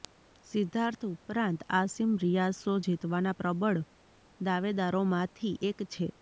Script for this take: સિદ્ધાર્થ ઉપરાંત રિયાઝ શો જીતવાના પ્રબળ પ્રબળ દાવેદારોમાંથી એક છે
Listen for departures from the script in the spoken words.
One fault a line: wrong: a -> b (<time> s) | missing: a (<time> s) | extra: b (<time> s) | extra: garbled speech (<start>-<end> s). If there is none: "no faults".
extra: આસિમ (1.7 s)
missing: પ્રબળ (3.8 s)